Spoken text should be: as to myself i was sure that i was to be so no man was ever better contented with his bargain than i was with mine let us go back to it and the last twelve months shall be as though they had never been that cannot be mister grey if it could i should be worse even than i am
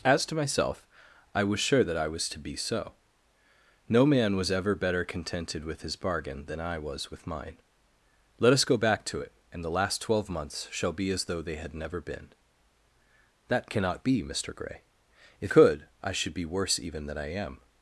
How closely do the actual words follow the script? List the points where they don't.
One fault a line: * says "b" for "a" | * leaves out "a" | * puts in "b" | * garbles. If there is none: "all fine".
* leaves out "it"